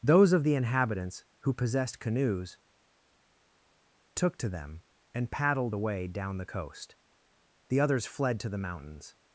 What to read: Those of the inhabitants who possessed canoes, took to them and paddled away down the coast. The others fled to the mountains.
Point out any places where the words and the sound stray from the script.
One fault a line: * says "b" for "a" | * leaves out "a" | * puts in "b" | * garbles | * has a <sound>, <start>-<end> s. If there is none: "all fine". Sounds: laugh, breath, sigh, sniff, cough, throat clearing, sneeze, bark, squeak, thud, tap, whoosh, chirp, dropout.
all fine